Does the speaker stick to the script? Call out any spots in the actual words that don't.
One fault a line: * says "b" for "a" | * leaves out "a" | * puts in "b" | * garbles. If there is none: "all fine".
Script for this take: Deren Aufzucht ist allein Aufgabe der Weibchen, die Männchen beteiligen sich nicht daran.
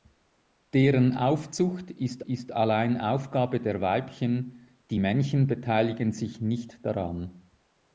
* puts in "ist"